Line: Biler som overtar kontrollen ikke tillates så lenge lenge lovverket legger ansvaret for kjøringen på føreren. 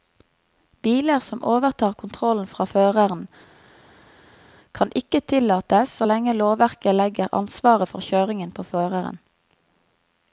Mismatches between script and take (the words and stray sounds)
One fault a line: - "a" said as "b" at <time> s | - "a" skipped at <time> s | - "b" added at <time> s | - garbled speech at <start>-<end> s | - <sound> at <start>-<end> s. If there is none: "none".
- "fra føreren kan" added at 2.5 s
- "lenge" skipped at 6.4 s